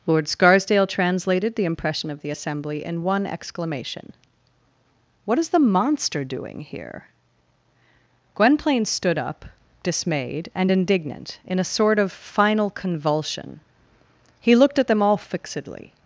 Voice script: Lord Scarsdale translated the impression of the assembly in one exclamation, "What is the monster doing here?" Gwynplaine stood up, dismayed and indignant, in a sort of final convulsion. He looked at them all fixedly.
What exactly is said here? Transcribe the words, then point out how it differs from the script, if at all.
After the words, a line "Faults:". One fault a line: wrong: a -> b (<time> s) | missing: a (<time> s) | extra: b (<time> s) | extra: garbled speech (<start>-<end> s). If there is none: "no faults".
Lord Scarsdale translated the impression of the assembly in one exclamation, "What is the monster doing here?" Gwynplaine stood up, dismayed and indignant, in a sort of final convulsion. He looked at them all fixedly.
Faults:
no faults